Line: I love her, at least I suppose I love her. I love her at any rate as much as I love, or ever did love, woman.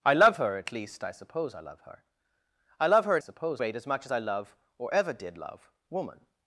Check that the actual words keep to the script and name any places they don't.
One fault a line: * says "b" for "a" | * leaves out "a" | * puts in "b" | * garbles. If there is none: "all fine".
* says "suppose" for "any"